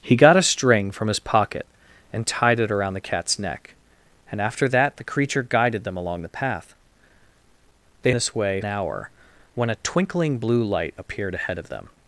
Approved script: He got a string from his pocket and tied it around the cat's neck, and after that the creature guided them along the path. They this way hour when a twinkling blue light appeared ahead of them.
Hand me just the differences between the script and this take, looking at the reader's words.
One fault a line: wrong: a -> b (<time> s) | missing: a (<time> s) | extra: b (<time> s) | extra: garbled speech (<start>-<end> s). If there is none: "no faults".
no faults